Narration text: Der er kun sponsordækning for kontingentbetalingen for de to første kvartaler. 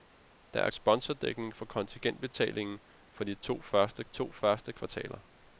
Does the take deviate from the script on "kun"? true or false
true